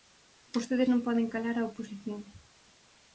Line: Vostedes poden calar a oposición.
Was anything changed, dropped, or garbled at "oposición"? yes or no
no